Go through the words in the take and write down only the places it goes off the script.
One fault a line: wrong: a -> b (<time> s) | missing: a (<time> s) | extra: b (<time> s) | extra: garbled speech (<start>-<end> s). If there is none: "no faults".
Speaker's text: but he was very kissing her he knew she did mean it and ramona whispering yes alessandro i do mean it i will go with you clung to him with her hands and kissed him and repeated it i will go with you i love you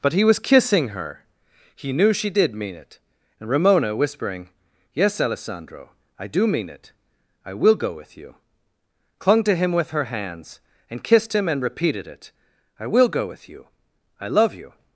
missing: very (0.4 s)